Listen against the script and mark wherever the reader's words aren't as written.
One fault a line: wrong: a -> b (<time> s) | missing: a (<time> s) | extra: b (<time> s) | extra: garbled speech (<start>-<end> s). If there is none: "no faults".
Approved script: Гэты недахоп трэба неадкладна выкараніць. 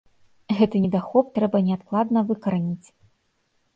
no faults